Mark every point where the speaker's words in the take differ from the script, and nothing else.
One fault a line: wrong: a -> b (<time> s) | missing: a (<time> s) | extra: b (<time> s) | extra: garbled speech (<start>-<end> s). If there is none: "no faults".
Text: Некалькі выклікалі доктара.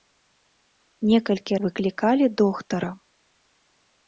no faults